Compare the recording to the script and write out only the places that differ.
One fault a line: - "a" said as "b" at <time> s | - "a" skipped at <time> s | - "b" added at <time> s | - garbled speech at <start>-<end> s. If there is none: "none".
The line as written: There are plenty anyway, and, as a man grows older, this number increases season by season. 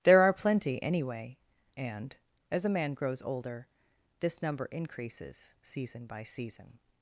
none